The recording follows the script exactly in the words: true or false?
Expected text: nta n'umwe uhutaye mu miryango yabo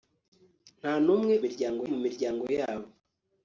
false